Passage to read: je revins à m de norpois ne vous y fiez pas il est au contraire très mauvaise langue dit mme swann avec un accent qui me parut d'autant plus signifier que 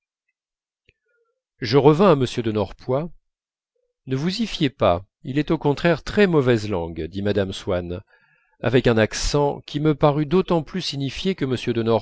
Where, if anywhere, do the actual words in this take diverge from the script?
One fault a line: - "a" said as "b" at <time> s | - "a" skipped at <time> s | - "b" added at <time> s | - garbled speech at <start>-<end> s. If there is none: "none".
none